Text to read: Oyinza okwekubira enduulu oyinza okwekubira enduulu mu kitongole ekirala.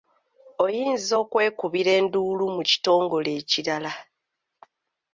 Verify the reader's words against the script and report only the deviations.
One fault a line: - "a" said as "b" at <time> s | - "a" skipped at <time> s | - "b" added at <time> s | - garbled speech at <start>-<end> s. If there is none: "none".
- "oyinza okwekubira enduulu" skipped at 2.4 s